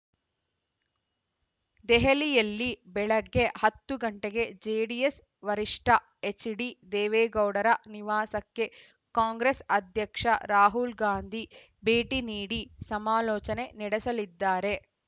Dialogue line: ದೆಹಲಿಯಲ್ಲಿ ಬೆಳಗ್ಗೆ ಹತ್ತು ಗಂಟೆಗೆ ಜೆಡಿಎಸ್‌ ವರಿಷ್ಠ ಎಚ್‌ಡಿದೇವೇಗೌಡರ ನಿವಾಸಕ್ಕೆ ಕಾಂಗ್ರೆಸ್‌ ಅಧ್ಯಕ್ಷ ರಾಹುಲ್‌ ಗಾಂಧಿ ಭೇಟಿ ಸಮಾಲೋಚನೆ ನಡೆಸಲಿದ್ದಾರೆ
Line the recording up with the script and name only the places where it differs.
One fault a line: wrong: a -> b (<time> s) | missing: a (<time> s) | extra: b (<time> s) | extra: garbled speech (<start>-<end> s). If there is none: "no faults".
extra: ನೀಡಿ (12.3 s)